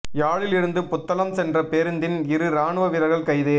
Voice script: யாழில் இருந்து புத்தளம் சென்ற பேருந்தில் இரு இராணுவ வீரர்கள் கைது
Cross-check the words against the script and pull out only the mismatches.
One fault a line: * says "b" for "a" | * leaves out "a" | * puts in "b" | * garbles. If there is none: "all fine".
all fine